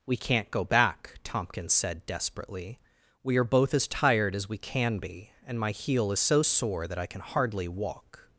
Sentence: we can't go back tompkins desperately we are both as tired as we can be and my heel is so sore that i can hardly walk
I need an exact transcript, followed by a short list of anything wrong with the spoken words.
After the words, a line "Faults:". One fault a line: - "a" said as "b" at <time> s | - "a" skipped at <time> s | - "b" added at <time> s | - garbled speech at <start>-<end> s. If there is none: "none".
we can't go back tompkins said desperately we are both as tired as we can be and my heel is so sore that i can hardly walk
Faults:
- "said" added at 1.7 s